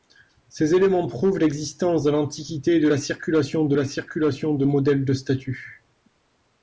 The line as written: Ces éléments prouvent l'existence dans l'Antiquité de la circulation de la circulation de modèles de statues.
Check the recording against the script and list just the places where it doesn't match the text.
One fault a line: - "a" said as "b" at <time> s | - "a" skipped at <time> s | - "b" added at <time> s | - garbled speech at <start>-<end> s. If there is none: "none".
none